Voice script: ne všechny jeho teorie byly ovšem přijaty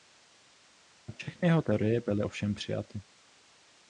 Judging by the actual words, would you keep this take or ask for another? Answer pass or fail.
pass